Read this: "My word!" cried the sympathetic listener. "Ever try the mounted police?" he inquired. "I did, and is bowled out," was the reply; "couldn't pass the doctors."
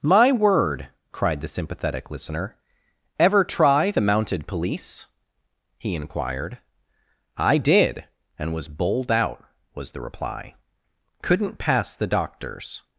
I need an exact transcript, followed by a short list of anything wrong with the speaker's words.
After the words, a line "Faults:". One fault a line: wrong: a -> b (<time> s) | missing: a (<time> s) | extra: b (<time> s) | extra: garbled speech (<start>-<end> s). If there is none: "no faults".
"My word!" cried the sympathetic listener. "Ever try the mounted police?" he inquired. "I did, and was bowled out," was the reply; "couldn't pass the doctors."
Faults:
wrong: is -> was (8.5 s)